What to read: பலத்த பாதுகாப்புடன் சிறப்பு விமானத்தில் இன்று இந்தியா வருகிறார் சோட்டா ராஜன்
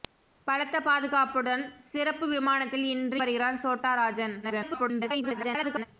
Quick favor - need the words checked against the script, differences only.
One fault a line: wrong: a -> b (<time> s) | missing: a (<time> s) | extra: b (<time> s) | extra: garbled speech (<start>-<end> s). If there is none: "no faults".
missing: இந்தியா (3.2 s)
extra: garbled speech (4.4-5.9 s)